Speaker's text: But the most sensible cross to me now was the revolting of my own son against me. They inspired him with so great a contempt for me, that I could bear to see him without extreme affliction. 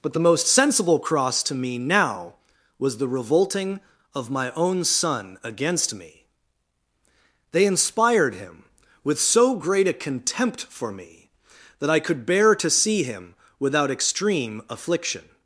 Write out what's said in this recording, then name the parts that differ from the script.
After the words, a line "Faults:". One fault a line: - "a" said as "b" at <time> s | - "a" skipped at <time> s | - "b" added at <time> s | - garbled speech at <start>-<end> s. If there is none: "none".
But the most sensible cross to me now was the revolting of my own son against me. They inspired him with so great a contempt for me, that I could bear to see him without extreme affliction.
Faults:
none